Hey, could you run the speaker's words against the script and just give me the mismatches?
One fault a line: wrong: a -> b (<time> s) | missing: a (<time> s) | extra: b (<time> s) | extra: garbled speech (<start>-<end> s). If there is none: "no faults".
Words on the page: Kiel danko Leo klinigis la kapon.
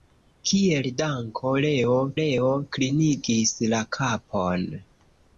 extra: Leo (2.2 s)